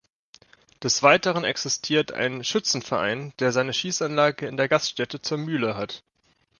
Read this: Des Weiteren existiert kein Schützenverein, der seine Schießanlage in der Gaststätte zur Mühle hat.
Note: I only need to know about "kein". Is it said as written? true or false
false